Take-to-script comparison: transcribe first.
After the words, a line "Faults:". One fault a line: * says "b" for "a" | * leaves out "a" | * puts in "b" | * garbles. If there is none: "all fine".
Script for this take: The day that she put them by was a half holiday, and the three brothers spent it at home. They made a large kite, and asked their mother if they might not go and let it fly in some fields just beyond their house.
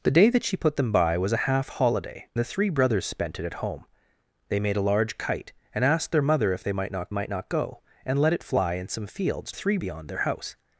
The day that she put them by was a half holiday, the three brothers spent it at home. They made a large kite, and asked their mother if they might not might not go and let it fly in some fields three beyond their house.
Faults:
* leaves out "and"
* puts in "might not"
* says "three" for "just"